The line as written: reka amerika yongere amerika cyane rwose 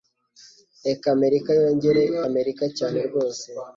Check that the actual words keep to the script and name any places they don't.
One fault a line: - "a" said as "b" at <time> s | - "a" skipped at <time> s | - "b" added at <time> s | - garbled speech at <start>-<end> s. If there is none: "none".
none